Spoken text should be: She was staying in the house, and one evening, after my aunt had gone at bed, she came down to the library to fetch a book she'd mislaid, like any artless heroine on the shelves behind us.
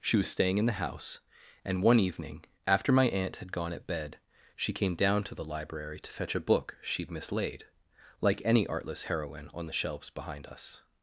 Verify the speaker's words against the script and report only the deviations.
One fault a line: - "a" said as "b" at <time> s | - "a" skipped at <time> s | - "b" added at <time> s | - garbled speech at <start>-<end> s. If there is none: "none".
none